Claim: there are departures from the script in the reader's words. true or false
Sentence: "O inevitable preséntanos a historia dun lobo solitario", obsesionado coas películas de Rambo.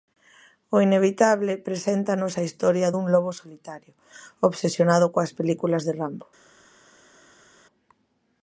false